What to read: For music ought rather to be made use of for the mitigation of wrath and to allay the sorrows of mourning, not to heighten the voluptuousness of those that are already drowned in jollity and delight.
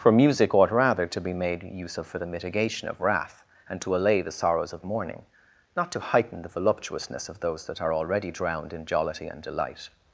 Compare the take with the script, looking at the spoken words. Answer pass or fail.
pass